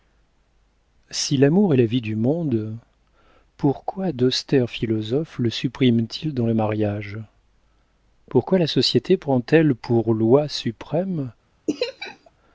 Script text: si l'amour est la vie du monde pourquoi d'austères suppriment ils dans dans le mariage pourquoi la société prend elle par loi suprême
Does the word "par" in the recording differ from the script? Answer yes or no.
yes